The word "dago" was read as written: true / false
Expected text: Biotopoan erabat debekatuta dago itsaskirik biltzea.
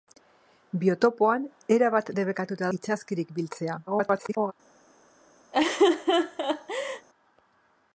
false